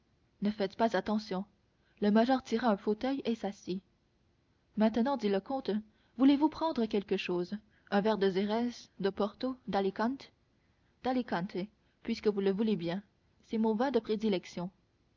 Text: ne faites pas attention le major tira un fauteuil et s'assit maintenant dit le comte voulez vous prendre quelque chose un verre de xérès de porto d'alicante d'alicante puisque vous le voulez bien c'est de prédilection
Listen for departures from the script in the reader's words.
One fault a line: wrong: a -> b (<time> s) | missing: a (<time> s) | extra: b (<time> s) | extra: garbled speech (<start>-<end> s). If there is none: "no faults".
extra: mon vin (13.6 s)